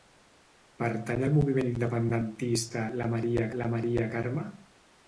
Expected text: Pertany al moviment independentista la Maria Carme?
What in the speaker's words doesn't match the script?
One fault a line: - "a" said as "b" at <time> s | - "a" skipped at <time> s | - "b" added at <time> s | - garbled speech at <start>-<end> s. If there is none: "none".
- "la Maria" added at 3.6 s